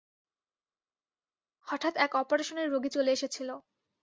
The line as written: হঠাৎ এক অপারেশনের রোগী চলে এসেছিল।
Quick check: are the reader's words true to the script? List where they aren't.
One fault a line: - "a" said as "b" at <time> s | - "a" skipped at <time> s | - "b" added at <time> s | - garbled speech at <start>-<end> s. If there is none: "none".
none